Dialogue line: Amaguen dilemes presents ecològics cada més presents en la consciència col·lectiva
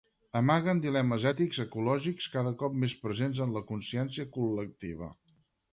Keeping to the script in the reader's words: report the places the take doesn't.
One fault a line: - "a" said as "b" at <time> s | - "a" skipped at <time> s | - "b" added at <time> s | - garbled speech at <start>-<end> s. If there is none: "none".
- "presents" said as "ètics" at 1.3 s
- "cop" added at 2.6 s